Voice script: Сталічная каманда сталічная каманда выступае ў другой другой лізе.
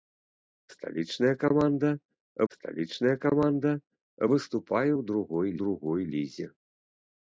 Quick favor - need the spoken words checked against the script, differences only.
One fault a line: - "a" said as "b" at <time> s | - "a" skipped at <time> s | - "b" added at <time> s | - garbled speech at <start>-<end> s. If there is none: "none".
none